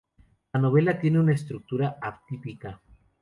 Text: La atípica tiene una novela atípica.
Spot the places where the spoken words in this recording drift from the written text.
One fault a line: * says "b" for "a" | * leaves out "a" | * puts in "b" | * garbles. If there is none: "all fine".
* says "novela" for "atípica"
* says "estructura" for "novela"